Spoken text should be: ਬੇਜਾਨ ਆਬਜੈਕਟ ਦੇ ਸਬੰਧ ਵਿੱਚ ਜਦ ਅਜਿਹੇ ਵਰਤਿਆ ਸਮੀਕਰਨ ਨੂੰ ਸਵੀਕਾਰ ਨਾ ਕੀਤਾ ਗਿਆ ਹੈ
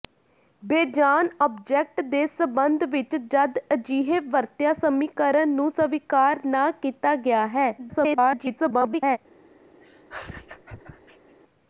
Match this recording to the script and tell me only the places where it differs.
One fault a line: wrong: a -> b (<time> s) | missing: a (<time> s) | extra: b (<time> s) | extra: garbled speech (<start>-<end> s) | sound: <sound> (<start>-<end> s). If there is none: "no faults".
extra: garbled speech (7.8-9.2 s)
sound: laugh (9.8-11.4 s)